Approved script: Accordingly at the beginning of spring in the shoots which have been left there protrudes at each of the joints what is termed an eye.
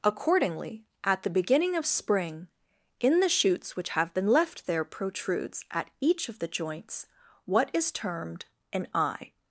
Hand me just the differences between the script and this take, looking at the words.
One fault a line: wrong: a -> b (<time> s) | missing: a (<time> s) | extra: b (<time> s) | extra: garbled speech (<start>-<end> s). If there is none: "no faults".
no faults